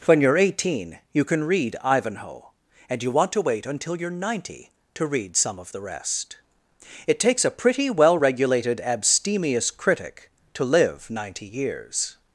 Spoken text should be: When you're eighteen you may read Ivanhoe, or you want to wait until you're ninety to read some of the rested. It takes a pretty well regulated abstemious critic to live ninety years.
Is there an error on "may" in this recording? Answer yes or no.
yes